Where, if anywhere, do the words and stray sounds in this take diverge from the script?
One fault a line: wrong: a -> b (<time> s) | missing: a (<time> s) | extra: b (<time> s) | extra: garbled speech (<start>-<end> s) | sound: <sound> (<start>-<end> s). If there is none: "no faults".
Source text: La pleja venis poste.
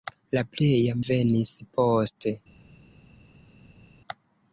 no faults